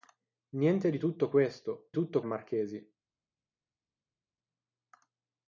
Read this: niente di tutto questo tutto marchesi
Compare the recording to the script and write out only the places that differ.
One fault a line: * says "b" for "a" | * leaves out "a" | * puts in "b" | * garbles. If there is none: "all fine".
all fine